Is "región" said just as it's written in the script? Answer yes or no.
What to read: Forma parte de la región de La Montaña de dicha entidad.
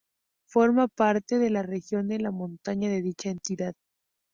yes